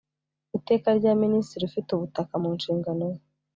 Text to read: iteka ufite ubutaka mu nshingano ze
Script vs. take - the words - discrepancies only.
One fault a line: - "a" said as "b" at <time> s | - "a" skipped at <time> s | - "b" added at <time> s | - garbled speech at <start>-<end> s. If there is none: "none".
- "rya minisitiri" added at 1.0 s